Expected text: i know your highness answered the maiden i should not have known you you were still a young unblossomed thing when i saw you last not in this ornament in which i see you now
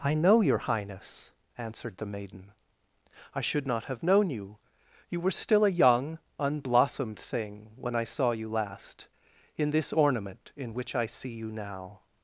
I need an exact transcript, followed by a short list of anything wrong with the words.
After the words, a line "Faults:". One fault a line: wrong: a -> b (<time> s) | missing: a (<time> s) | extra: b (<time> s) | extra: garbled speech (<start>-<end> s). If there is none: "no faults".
i know your highness answered the maiden i should not have known you you were still a young unblossomed thing when i saw you last in this ornament in which i see you now
Faults:
missing: not (9.1 s)